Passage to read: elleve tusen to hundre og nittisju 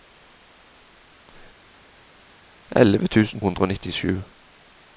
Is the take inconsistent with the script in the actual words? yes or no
yes